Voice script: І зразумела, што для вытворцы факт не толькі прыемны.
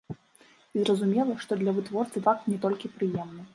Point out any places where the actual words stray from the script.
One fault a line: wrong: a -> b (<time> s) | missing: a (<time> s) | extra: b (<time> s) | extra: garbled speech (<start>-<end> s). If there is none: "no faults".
no faults